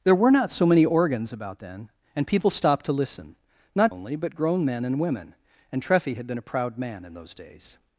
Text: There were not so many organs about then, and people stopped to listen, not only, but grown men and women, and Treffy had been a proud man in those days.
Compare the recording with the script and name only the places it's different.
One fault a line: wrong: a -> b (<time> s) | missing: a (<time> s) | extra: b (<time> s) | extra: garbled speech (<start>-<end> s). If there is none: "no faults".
no faults